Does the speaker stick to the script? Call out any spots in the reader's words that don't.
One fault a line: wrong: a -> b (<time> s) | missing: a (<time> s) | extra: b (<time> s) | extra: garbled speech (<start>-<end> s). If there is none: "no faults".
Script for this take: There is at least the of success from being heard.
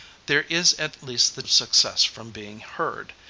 no faults